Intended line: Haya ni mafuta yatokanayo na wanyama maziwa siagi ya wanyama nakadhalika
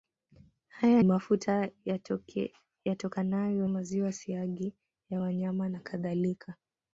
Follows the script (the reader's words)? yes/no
no